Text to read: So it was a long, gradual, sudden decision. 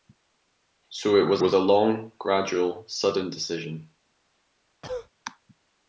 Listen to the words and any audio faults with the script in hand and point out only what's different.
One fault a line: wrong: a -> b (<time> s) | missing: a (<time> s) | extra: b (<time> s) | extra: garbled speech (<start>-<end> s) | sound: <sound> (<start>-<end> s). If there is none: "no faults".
extra: was (1.4 s)
sound: cough (4.8-5.1 s)